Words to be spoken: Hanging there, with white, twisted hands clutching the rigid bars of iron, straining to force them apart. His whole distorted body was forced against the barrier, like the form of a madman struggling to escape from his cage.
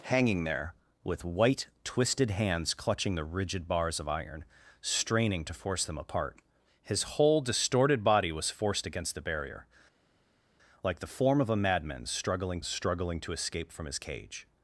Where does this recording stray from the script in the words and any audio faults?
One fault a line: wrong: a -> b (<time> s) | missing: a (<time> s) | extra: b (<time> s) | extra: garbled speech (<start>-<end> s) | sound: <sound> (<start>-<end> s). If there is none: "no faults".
extra: struggling (12.6 s)